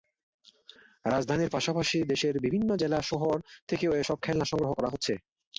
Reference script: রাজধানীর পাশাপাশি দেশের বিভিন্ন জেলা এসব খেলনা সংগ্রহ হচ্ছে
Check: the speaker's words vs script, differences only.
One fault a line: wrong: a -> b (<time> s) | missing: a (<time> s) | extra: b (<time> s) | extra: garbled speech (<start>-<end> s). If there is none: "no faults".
extra: শহর থেকেও (3.0 s)
extra: করা (4.7 s)